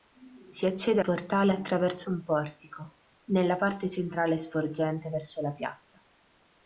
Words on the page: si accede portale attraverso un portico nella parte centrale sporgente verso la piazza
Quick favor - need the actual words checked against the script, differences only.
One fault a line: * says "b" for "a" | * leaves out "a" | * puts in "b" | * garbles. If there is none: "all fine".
all fine